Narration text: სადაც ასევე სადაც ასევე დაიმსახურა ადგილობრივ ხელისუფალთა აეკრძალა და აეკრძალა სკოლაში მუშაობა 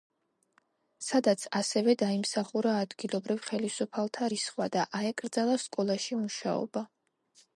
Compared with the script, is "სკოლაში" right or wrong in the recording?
right